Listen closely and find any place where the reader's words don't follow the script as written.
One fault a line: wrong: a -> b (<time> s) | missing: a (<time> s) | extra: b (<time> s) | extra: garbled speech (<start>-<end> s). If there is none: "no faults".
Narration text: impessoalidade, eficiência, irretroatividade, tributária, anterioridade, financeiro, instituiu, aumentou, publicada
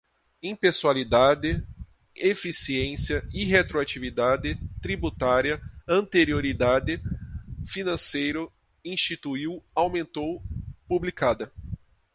no faults